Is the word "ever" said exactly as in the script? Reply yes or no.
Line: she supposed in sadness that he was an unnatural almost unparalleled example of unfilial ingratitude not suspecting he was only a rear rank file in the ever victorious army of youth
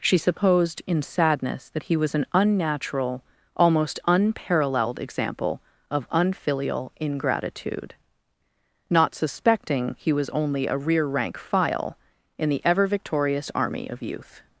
yes